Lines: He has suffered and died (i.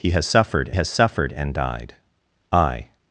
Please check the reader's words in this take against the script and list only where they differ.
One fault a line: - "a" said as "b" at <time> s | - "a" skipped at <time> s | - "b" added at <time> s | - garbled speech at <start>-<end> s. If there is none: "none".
- "has suffered" added at 0.7 s